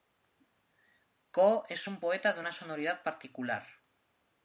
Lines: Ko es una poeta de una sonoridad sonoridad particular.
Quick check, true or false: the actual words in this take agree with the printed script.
false